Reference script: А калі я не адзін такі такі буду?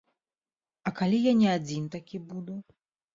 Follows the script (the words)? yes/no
no